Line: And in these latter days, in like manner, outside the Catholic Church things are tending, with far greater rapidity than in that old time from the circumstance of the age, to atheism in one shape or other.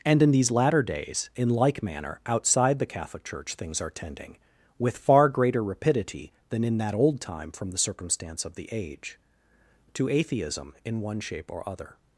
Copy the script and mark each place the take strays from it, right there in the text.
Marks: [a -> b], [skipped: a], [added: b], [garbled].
And in these latter days, in like manner, outside the Catholic Church things are tending, with far greater rapidity than in that old time from the circumstance of the age, to atheism in one shape or other.